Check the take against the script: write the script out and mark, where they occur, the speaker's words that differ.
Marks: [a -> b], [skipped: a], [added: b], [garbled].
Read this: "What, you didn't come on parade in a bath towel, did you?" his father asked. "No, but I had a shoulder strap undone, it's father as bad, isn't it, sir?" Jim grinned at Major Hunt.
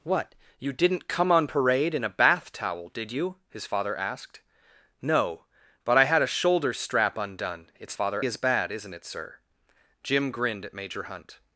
"What, you didn't come on parade in a bath towel, did you?" his father asked. "No, but I had a shoulder strap undone, it's father as bad, isn't it, sir?" Jim grinned at Major Hunt.